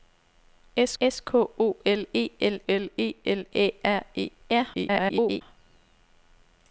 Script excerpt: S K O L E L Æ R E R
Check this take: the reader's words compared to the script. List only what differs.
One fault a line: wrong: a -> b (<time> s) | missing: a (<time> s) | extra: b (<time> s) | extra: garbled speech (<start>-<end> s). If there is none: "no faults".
extra: s (1.0 s)
extra: L E L (2.7 s)
extra: garbled speech (4.7-5.4 s)